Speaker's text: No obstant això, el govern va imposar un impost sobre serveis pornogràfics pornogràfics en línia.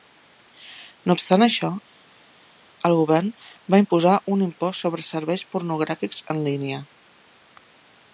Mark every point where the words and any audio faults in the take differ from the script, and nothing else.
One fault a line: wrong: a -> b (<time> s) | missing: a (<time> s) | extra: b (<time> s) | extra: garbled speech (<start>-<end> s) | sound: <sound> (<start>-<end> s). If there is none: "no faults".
missing: pornogràfics (6.3 s)